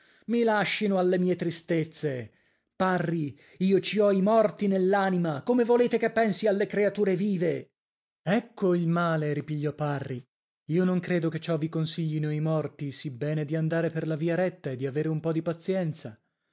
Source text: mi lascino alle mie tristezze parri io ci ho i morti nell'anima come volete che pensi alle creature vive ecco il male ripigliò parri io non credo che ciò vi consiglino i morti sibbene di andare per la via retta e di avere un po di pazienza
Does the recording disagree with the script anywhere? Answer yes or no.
no